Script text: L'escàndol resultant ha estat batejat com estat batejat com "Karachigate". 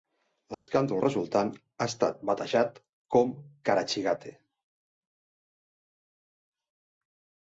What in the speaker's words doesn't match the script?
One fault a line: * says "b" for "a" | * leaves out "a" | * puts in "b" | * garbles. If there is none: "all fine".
* leaves out "estat batejat com"